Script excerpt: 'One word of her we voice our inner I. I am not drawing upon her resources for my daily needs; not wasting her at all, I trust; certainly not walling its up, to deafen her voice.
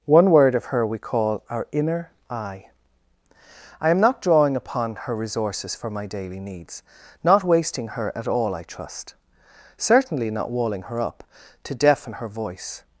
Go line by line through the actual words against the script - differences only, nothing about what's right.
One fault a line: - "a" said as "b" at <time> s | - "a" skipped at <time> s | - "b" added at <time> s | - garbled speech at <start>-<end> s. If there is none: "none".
- "voice" said as "call" at 1.0 s
- "its" said as "her" at 10.8 s